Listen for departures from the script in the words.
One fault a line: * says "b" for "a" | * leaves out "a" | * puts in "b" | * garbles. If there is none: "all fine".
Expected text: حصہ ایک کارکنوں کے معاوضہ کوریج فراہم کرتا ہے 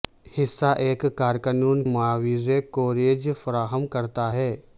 * leaves out "کے"